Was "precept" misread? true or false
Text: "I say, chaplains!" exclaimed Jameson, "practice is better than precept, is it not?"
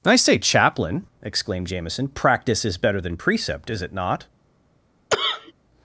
false